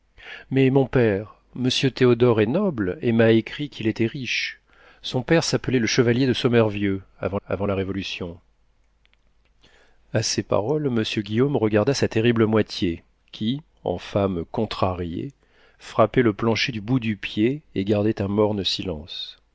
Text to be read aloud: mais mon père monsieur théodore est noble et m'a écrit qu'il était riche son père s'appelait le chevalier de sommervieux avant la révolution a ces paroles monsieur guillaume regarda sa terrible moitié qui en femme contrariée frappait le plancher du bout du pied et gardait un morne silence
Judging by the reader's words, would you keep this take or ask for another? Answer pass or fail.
fail